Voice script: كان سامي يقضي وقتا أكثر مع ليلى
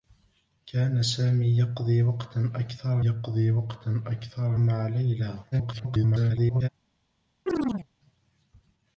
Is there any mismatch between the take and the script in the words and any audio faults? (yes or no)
yes